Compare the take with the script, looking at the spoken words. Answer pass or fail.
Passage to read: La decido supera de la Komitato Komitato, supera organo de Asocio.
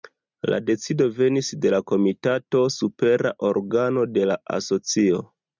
fail